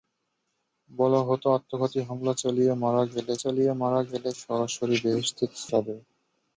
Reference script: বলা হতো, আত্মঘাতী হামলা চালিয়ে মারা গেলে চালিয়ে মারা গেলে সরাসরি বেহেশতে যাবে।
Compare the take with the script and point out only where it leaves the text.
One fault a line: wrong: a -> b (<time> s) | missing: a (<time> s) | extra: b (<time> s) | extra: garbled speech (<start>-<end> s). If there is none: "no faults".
no faults